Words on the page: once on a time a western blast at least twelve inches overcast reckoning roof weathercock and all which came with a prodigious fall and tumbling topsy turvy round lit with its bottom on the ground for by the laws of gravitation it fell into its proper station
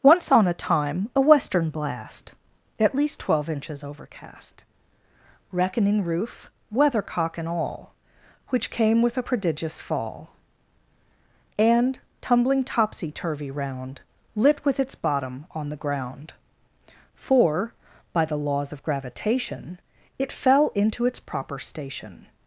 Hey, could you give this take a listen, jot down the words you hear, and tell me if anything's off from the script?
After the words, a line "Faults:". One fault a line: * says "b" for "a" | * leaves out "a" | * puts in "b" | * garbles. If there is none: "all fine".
once on a time a western blast at least twelve inches overcast reckoning roof weathercock and all which came with a prodigious fall and tumbling topsy turvy round lit with its bottom on the ground for by the laws of gravitation it fell into its proper station
Faults:
all fine